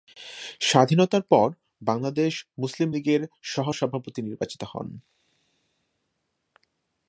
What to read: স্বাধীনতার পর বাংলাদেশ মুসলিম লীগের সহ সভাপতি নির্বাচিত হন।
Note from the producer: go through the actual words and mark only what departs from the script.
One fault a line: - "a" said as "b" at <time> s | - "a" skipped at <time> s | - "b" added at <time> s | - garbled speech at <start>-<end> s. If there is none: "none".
none